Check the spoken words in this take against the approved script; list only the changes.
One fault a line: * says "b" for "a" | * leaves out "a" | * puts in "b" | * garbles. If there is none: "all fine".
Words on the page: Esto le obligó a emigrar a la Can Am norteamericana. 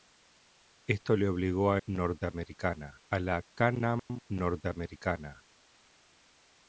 * says "norteamericana" for "emigrar"